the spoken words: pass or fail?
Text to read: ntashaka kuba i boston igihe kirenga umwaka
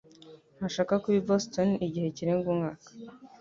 pass